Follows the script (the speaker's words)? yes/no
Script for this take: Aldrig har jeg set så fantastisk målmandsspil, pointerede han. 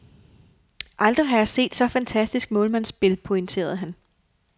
yes